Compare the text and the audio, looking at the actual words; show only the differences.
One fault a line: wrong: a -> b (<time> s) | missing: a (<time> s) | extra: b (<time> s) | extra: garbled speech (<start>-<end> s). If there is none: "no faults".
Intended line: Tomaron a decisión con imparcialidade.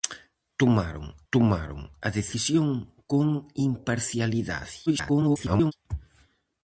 extra: tomaron (1.3 s)
extra: garbled speech (4.9-5.7 s)